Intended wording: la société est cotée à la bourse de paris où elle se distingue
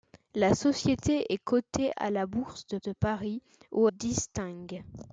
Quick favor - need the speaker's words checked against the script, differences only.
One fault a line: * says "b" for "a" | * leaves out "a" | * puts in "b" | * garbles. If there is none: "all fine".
* puts in "de"
* leaves out "elle se"